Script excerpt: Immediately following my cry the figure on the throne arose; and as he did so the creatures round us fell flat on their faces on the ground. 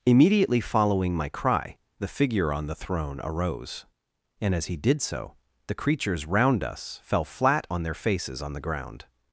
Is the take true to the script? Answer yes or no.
yes